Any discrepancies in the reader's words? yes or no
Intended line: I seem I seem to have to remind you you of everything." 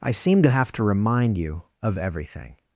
yes